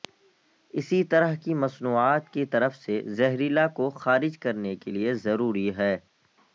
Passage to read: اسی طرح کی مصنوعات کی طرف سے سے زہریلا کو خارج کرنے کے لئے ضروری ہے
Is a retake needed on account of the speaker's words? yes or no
yes